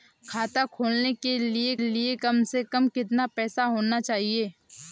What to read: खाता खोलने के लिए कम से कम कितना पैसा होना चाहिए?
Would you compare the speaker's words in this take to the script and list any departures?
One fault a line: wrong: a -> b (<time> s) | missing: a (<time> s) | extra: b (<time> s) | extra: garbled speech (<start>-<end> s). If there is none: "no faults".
extra: लिए (1.8 s)